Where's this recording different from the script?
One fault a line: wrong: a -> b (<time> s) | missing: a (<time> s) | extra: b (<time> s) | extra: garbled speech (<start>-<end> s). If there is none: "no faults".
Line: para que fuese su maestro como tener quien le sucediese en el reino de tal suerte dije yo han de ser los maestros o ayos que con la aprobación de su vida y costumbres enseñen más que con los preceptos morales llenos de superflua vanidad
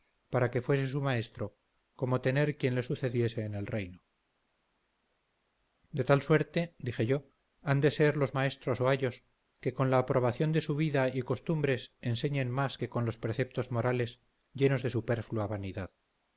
no faults